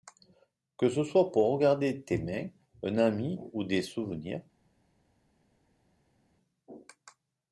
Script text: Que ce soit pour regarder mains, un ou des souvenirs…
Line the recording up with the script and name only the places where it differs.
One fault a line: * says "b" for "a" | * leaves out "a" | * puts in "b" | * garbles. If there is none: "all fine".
* puts in "tes"
* puts in "ami"